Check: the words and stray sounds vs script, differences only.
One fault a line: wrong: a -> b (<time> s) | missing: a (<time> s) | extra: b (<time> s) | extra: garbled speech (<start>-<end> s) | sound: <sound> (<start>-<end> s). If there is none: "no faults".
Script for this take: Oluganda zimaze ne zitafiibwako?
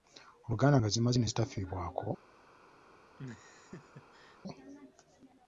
extra: nga (0.8 s)
sound: laugh (3.2-4.4 s)